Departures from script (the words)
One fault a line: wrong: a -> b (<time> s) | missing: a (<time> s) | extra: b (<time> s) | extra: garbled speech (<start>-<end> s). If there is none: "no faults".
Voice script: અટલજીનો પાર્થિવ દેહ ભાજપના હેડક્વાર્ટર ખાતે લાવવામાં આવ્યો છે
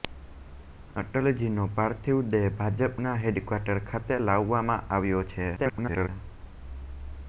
extra: garbled speech (5.6-6.1 s)